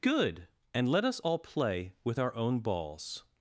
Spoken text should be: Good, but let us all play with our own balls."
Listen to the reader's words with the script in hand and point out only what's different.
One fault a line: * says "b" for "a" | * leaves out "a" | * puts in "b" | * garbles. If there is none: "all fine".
* says "and" for "but"